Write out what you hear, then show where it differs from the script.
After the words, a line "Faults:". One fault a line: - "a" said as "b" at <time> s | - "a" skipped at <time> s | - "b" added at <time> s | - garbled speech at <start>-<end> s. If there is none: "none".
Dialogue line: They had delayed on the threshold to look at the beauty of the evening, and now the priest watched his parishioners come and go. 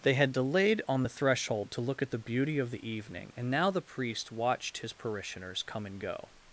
They had delayed on the threshold to look at the beauty of the evening, and now the priest watched his parishioners come and go.
Faults:
none